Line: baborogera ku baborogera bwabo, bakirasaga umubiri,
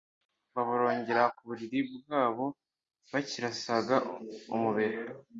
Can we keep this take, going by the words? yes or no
no